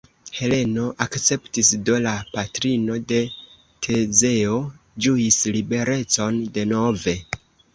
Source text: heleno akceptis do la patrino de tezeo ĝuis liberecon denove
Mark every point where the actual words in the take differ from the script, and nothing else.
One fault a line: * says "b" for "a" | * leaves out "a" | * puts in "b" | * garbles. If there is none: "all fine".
all fine